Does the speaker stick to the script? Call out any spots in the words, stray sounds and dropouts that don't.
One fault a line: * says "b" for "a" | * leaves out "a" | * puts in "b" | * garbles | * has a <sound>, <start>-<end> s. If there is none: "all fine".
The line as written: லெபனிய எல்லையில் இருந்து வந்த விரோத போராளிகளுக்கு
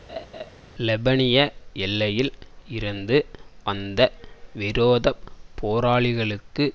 * has a laugh, 0.1-0.5 s